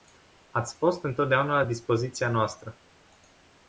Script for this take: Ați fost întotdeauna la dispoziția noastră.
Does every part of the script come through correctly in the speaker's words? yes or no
yes